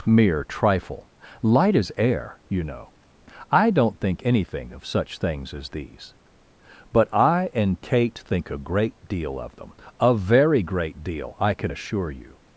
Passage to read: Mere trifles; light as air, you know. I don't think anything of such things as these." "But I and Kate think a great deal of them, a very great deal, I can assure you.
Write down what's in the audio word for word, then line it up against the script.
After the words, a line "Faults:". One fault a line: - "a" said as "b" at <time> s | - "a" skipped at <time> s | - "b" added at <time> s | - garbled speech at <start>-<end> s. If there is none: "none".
Mere trifle; light as air, you know. I don't think anything of such things as these." "But I and Kate think a great deal of them, a very great deal, I can assure you.
Faults:
- "trifles" said as "trifle" at 0.4 s